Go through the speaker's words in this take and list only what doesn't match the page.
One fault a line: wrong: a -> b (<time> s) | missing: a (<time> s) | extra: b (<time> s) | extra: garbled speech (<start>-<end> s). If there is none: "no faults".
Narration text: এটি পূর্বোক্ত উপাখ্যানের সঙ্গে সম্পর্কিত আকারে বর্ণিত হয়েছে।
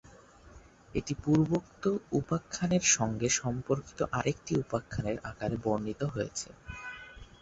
extra: আরেকটি উপাখ্যানের (4.1 s)